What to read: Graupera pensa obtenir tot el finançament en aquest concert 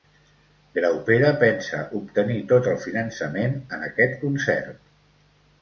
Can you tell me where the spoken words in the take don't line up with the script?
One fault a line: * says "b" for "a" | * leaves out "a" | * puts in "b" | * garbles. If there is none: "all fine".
all fine